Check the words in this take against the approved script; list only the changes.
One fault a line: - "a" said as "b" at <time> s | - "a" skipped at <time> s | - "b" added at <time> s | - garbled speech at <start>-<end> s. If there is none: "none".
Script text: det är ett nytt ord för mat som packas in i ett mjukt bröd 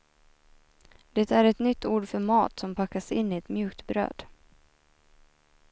none